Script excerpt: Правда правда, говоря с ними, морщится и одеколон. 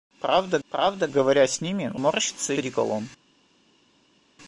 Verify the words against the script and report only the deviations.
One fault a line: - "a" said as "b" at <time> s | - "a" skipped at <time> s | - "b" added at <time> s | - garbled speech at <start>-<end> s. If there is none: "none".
none